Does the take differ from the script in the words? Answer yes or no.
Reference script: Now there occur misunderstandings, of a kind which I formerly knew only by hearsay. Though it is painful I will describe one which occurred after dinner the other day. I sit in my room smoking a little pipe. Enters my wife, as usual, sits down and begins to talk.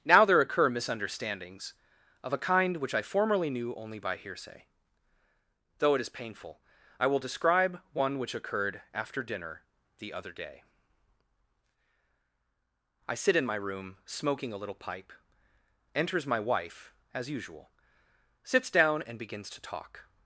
no